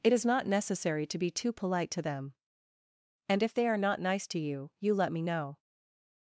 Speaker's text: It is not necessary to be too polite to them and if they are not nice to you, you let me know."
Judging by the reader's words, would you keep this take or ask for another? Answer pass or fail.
pass